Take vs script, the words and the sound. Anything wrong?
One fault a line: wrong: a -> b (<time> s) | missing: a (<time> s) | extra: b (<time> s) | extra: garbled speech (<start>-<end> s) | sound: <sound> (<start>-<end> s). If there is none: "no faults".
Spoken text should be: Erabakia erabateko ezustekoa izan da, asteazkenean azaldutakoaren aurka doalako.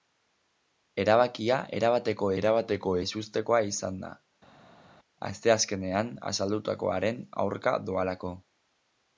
extra: erabateko (2.4 s)